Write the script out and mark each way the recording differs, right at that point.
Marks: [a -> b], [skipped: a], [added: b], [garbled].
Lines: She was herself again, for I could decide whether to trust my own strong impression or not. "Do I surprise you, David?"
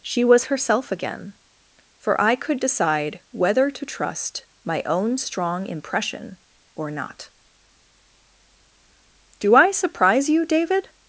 She was herself again, for I could decide whether to trust my own strong impression or not. "Do I surprise you, David?"